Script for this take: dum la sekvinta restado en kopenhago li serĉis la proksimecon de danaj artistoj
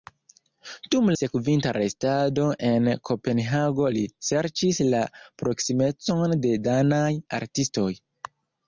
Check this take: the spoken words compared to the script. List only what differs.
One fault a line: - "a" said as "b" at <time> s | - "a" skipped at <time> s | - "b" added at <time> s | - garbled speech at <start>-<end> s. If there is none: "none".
- "la" skipped at 1.1 s